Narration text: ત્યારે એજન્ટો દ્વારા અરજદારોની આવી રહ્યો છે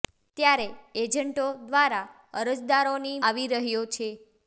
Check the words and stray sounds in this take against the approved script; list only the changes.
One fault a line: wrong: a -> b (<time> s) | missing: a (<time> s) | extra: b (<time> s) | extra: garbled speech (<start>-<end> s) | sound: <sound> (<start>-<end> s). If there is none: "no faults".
no faults